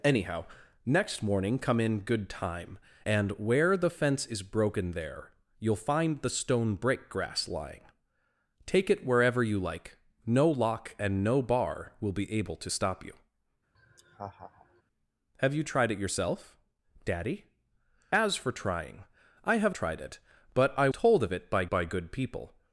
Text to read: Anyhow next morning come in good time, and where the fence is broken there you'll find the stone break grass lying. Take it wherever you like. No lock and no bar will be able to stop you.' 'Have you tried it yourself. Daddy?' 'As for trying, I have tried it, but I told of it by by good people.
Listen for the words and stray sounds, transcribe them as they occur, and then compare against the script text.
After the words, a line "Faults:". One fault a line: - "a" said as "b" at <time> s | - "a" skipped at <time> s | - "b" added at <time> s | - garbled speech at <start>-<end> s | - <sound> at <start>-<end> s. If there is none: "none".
Anyhow next morning come in good time, and where the fence is broken there you'll find the stone break grass lying. Take it wherever you like. No lock and no bar will be able to stop you.' 'Have you tried it yourself. Daddy?' 'As for trying, I have tried it, but I told of it by by good people.
Faults:
- laugh at 13.7-14.8 s